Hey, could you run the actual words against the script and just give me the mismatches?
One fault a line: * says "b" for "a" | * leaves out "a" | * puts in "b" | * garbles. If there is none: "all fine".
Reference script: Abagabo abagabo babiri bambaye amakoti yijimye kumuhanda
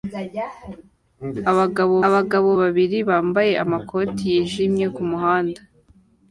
all fine